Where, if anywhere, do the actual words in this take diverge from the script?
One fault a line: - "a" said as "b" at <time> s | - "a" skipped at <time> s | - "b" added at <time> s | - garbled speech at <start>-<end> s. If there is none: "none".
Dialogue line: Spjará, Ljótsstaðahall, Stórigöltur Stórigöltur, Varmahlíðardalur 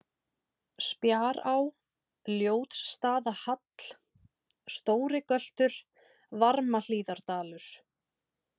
- "Stórigöltur" skipped at 5.8 s